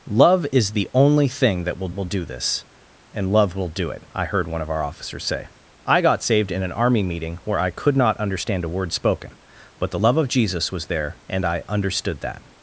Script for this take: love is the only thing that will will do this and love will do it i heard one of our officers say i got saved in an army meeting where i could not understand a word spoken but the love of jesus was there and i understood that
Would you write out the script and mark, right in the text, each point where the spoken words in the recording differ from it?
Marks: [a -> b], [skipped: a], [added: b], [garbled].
love is the only thing that will will do this and love will do it i heard one of our officers say i got saved in an army meeting where i could not understand a word spoken but the love of jesus was there and i understood that